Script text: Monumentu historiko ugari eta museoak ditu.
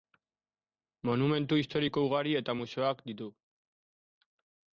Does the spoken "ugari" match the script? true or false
true